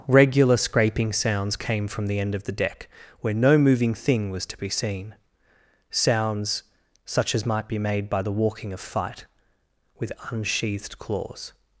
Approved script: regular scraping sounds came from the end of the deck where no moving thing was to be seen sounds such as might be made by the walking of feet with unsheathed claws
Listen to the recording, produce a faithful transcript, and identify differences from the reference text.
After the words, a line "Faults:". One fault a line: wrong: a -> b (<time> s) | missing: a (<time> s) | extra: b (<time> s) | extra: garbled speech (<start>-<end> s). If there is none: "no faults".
regular scraping sounds came from the end of the deck where no moving thing was to be seen sounds such as might be made by the walking of fight with unsheathed claws
Faults:
wrong: feet -> fight (8.8 s)